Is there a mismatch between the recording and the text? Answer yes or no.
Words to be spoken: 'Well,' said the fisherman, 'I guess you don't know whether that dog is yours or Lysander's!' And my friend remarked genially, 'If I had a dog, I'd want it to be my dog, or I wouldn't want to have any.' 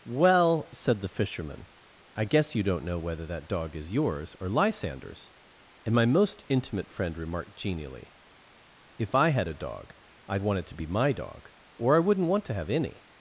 yes